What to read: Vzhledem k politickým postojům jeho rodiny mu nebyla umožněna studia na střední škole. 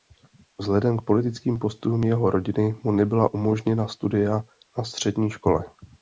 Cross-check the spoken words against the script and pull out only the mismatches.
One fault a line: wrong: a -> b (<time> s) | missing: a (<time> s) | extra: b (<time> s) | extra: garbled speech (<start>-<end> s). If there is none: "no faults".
no faults